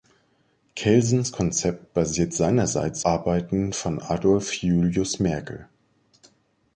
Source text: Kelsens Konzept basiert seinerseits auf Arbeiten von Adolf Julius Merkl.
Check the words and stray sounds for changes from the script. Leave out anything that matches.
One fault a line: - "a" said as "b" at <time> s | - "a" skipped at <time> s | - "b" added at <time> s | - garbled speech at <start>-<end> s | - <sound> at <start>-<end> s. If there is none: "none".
- "auf" skipped at 3.0 s